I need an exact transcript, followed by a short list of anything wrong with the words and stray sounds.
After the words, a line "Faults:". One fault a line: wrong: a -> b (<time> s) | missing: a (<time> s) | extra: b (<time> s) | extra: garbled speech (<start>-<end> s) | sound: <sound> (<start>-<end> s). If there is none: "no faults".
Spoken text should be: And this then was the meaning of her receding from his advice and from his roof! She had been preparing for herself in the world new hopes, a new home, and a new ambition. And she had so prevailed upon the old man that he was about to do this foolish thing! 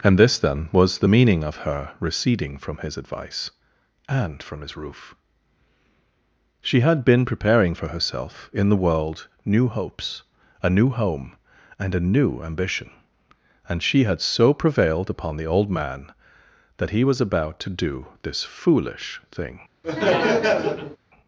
And this then was the meaning of her receding from his advice and from his roof! She had been preparing for herself in the world new hopes, a new home, and a new ambition. And she had so prevailed upon the old man that he was about to do this foolish thing!
Faults:
sound: laugh (19.8-21.0 s)